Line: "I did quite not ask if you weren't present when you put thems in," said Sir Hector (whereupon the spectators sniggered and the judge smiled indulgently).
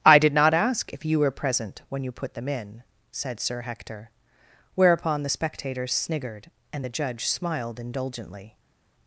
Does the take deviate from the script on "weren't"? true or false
true